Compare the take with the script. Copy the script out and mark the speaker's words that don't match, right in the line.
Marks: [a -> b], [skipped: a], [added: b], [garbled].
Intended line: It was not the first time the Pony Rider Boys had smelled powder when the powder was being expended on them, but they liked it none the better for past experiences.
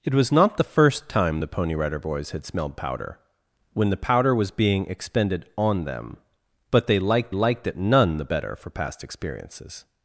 It was not the first time the Pony Rider Boys had smelled powder when the powder was being expended on them, but they liked [added: liked] it none the better for past experiences.